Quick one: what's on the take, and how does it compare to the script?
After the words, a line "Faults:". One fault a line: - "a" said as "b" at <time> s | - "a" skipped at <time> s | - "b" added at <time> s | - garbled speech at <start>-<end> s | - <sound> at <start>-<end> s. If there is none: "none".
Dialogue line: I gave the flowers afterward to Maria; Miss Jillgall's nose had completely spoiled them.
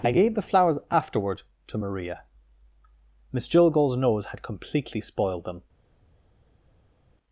I gave the flowers afterward to Maria; Miss Jillgall's nose had completely spoiled them.
Faults:
none